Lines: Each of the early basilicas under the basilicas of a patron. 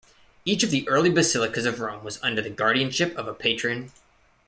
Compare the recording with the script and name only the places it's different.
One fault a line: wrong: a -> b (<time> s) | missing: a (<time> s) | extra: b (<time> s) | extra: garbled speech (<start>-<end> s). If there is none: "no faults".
extra: of Rome was (1.6 s)
wrong: basilicas -> guardianship (2.5 s)